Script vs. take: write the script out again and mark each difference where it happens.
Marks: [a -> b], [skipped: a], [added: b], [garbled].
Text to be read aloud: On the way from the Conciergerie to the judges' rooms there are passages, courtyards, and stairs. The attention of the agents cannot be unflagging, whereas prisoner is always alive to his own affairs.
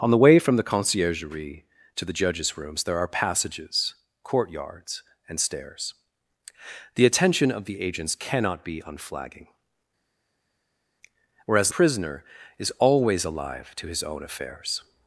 On the way from the Conciergerie to the judges' rooms there are passages, courtyards, and stairs. The attention of the agents cannot be unflagging, whereas prisoner is always alive to his own affairs.